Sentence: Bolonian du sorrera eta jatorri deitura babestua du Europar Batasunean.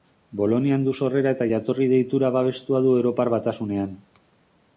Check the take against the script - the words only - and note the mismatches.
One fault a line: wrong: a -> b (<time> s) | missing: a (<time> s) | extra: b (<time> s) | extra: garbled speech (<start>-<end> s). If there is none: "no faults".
no faults